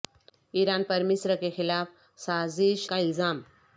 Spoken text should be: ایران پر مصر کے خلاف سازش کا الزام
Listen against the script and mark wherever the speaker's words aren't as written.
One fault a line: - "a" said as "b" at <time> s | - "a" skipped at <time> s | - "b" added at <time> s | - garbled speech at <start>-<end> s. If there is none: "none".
none